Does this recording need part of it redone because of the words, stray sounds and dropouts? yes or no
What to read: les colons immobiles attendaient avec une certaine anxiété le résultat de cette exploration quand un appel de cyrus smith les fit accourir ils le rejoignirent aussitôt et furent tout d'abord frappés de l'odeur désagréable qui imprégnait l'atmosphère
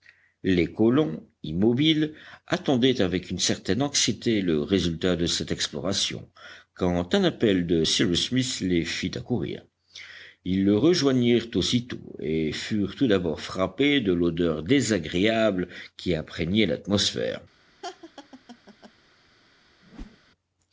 yes